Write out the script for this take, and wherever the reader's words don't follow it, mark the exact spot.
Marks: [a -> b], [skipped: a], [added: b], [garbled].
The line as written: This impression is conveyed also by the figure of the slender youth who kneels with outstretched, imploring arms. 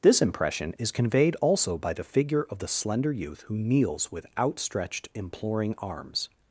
This impression is conveyed also by the figure of the slender youth who kneels with outstretched, imploring arms.